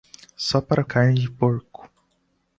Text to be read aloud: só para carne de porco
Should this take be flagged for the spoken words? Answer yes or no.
no